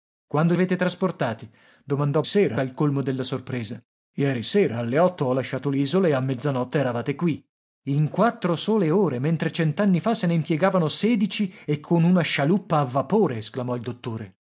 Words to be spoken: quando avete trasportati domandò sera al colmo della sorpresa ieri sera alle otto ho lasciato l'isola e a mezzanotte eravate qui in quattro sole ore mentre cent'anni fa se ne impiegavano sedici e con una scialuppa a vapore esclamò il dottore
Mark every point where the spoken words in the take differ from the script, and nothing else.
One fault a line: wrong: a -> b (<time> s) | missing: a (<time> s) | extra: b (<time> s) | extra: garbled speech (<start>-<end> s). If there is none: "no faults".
no faults